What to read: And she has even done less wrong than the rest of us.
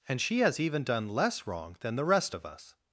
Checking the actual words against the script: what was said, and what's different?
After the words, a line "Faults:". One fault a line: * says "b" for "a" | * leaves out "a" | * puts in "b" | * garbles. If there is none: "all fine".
And she has even done less wrong than the rest of us.
Faults:
all fine